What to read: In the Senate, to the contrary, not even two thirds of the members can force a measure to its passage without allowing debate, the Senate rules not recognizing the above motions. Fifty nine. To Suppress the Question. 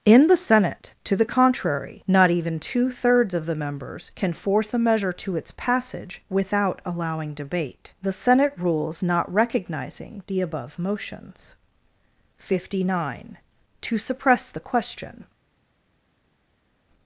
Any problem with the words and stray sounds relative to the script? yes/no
no